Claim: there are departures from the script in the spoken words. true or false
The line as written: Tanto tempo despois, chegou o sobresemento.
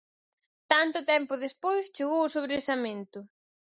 false